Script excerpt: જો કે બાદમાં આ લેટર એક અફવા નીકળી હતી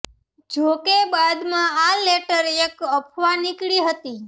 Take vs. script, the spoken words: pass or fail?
pass